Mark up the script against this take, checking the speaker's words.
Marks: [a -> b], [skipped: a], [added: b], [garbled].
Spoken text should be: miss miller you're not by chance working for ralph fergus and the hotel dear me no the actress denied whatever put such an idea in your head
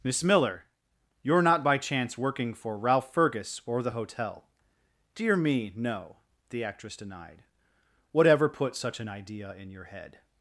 miss miller you're not by chance working for ralph fergus [and -> or] the hotel dear me no the actress denied whatever put such an idea in your head